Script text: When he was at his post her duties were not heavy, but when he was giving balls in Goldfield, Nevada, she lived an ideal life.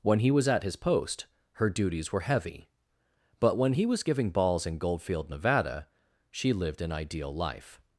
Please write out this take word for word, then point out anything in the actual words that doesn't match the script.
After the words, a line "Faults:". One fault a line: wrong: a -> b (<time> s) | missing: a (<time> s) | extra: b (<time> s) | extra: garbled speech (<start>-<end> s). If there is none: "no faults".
When he was at his post her duties were heavy, but when he was giving balls in Goldfield, Nevada, she lived an ideal life.
Faults:
missing: not (2.2 s)